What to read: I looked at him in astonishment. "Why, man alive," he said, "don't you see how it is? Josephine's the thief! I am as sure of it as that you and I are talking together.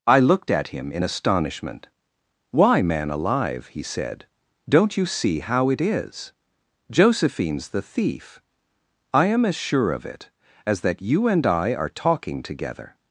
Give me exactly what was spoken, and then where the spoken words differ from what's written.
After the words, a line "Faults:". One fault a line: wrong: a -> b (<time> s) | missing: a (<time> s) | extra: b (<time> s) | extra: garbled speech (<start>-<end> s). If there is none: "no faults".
I looked at him in astonishment. "Why, man alive," he said, "don't you see how it is? Josephine's the thief! I am as sure of it as that you and I are talking together.
Faults:
no faults